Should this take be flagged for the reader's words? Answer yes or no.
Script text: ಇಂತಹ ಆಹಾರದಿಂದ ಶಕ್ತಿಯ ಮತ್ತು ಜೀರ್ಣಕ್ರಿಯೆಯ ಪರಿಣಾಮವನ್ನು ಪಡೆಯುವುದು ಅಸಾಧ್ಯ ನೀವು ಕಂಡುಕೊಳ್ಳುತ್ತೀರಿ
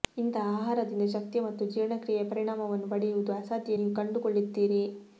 no